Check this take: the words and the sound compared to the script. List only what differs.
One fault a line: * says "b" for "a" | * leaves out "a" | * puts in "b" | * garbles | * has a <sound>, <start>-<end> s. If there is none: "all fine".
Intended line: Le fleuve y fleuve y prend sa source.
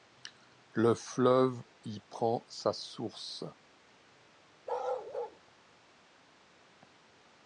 * leaves out "fleuve y"
* has a bark, 4.7-5.4 s